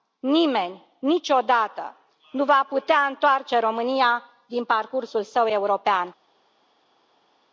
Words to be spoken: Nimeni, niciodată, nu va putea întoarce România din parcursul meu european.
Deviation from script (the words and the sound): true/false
true